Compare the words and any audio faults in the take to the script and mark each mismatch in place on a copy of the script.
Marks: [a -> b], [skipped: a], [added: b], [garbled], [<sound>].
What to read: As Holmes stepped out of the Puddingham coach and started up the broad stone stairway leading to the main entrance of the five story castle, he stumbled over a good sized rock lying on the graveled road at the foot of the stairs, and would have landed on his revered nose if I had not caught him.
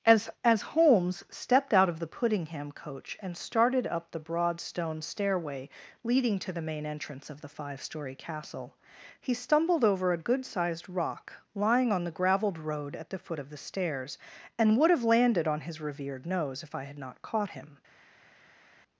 As [added: as] Holmes stepped out of the Puddingham coach and started up the broad stone stairway leading to the main entrance of the five story castle, he stumbled over a good sized rock lying on the graveled road at the foot of the stairs, and would have landed on his revered nose if I had not caught him.